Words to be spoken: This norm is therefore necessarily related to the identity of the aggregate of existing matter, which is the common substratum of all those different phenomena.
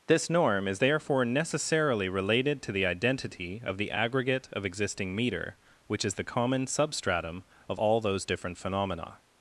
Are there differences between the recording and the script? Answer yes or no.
yes